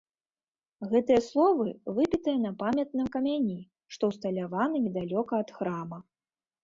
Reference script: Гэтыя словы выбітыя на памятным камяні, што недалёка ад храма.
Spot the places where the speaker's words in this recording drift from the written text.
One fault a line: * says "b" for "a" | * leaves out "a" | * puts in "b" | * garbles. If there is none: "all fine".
* puts in "ўсталяваны"